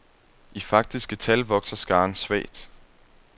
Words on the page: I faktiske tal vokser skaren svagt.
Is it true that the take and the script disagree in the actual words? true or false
false